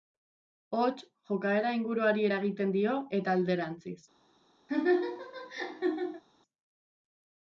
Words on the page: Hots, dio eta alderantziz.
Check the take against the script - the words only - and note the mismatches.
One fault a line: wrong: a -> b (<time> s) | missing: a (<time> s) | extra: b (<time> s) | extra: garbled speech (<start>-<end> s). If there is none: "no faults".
extra: jokaera inguruari eragiten (1.3 s)